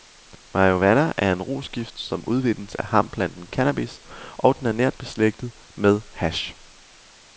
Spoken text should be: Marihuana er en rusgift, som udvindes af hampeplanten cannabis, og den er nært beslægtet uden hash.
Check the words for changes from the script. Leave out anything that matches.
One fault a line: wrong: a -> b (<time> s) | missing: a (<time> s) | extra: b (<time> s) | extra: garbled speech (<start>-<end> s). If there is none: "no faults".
wrong: uden -> med (5.8 s)